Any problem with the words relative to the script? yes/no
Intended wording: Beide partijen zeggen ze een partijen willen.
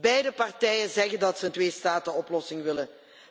yes